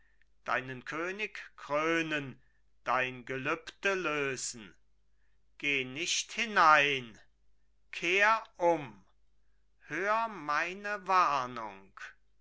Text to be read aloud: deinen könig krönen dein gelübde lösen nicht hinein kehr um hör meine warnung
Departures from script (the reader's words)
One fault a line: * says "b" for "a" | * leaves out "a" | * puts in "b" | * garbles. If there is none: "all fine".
* puts in "geh"